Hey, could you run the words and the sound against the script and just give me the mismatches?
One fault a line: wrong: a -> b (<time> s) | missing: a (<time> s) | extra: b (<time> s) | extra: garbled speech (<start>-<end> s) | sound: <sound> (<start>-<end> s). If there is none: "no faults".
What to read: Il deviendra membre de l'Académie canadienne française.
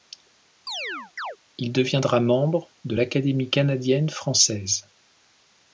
sound: chirp (0.7-1.4 s)